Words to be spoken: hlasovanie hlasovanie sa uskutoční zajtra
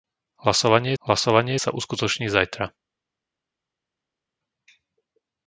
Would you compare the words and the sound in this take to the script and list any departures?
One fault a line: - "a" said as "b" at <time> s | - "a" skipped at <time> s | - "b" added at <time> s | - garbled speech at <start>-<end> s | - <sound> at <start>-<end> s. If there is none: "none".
none